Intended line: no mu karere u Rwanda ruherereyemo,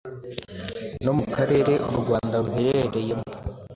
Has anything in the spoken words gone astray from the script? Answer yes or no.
no